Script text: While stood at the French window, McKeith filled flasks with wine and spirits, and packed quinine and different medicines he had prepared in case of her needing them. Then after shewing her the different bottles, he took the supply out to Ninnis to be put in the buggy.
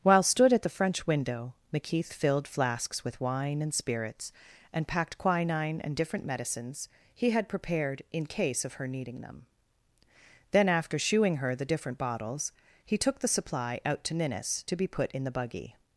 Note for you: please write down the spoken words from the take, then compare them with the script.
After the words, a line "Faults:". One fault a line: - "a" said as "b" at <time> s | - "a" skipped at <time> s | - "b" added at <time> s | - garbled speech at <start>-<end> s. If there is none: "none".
While stood at the French window, McKeith filled flasks with wine and spirits, and packed quinine and different medicines he had prepared in case of her needing them. Then after shewing her the different bottles, he took the supply out to Ninnis to be put in the buggy.
Faults:
none